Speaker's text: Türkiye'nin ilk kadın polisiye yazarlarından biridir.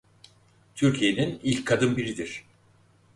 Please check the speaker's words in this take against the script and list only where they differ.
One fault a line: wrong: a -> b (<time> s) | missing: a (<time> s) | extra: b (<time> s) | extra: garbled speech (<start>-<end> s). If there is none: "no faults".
missing: polisiye yazarlarından (1.9 s)